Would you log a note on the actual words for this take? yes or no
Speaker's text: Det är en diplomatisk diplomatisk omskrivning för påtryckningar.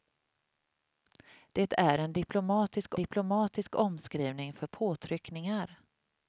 no